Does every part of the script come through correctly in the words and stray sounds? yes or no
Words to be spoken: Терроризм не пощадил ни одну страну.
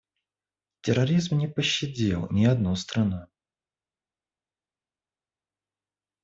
yes